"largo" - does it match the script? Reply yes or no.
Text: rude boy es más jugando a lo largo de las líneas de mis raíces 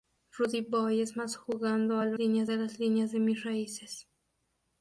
no